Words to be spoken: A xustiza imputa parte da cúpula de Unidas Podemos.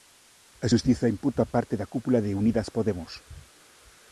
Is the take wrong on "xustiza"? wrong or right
right